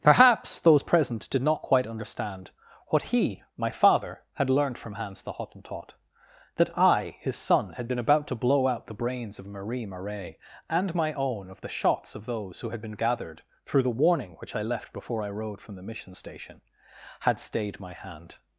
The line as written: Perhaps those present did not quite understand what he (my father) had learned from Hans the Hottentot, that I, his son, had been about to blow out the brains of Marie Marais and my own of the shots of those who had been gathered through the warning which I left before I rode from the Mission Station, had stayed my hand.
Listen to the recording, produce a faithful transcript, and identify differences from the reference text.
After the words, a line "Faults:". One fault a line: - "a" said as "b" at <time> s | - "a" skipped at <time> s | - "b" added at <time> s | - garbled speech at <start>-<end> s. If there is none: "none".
Perhaps those present did not quite understand what he (my father) had learned from Hans the Hottentot, that I, his son, had been about to blow out the brains of Marie Marais and my own of the shots of those who had been gathered through the warning which I left before I rode from the Mission Station, had stayed my hand.
Faults:
none